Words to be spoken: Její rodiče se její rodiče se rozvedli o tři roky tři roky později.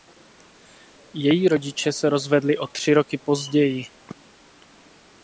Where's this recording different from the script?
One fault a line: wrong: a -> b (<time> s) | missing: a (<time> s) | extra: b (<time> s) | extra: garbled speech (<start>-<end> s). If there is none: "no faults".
missing: její rodiče se (2.1 s)
missing: tři roky (3.2 s)